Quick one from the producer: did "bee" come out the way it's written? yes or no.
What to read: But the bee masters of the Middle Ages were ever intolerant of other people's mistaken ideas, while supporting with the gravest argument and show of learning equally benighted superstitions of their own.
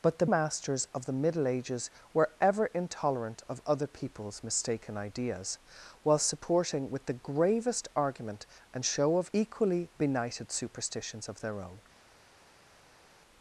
no